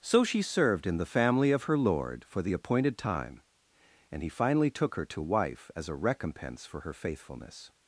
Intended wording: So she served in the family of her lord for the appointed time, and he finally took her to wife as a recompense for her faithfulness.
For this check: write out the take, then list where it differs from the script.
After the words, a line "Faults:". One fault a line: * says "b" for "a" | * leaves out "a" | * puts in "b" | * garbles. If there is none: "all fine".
So she served in the family of her lord for the appointed time, and he finally took her to wife as a recompense for her faithfulness.
Faults:
all fine